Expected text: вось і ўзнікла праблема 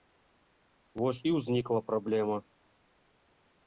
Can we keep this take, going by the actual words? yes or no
yes